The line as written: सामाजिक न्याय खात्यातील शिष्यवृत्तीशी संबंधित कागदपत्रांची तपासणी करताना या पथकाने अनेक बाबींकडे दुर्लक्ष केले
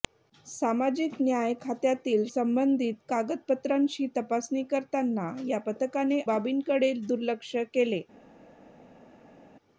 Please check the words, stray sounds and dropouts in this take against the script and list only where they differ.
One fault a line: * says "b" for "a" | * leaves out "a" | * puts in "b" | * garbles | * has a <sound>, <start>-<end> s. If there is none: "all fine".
* leaves out "शिष्यवृत्तीशी"
* leaves out "अनेक"